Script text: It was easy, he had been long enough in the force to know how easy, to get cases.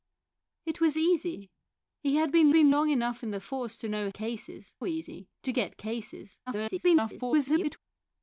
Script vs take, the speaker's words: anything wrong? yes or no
yes